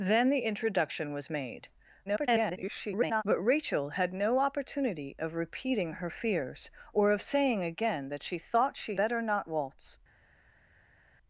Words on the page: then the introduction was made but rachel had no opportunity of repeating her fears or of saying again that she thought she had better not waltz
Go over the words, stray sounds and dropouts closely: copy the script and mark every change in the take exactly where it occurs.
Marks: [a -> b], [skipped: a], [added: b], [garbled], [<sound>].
then the introduction was made [garbled] but rachel had no opportunity of repeating her fears or of saying again that she thought she [skipped: had] better not waltz